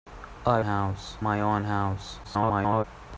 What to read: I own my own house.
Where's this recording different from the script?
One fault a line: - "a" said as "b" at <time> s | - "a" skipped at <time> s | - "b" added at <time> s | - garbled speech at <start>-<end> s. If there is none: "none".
- "own" said as "house" at 0.6 s
- garbled speech at 2.2-2.8 s